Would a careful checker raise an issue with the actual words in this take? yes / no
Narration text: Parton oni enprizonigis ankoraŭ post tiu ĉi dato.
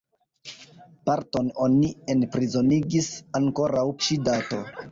yes